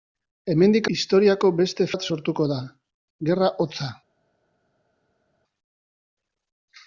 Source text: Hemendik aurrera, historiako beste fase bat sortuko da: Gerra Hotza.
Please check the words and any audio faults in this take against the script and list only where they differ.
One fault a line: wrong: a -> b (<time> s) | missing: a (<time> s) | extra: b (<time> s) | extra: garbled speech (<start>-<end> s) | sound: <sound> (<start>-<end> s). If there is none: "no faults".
missing: aurrera (0.9 s)
missing: fase (1.9 s)